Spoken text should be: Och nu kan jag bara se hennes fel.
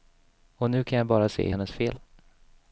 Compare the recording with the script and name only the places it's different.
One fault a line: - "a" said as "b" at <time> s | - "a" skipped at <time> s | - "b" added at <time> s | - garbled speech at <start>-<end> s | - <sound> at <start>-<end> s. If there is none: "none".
none